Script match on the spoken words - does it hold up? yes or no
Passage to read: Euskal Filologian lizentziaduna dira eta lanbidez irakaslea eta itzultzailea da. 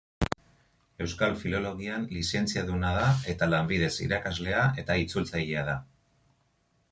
no